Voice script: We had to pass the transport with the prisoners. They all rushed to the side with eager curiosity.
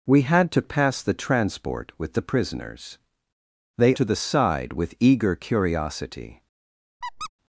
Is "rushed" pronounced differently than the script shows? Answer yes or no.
yes